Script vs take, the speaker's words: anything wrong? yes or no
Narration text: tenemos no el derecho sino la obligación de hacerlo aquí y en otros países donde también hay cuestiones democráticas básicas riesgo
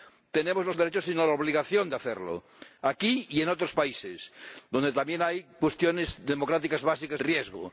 no